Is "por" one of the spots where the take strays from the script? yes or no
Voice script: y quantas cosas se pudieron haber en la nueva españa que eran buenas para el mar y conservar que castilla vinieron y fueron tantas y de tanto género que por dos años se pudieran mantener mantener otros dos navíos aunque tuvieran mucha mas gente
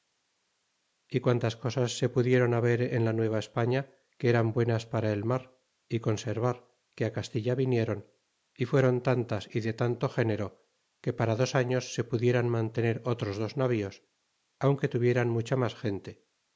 yes